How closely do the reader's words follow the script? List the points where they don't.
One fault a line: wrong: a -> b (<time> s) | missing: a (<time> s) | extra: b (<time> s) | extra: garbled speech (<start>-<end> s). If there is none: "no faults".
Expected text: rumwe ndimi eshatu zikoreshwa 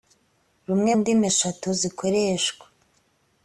no faults